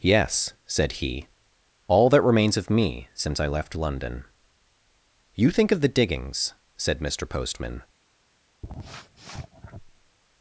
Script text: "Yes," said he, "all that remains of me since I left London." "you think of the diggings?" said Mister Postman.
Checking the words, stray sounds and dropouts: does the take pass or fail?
fail